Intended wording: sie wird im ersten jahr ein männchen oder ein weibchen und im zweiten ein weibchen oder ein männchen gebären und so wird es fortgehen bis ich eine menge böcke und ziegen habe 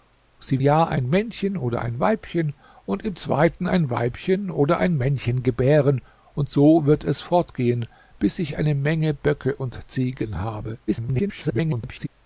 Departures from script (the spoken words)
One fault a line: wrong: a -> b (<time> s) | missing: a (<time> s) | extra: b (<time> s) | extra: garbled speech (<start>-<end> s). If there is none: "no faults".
missing: wird im ersten (0.6 s)
extra: garbled speech (10.9-12.1 s)